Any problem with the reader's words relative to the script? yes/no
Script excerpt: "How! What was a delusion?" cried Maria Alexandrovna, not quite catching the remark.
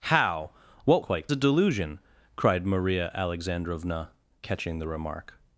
yes